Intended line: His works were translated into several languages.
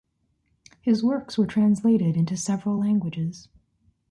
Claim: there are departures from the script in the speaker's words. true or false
false